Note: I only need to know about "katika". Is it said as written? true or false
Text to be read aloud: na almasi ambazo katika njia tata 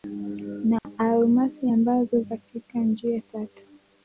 true